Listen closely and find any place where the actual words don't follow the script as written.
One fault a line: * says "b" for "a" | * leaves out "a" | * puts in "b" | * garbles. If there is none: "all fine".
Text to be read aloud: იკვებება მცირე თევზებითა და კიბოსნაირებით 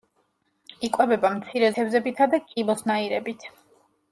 all fine